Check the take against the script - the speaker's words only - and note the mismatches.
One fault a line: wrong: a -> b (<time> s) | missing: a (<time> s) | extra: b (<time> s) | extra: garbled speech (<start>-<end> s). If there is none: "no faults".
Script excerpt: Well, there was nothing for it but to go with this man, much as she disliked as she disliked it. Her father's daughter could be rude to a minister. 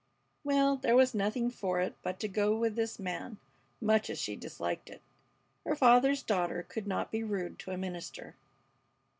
missing: as she disliked (4.9 s)
extra: not (6.9 s)